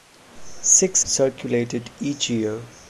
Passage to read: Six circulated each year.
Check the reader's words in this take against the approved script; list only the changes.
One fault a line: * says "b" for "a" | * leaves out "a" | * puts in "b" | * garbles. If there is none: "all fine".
all fine